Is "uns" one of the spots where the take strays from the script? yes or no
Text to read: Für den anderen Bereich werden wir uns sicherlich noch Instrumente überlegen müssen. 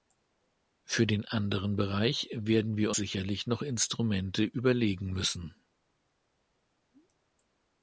yes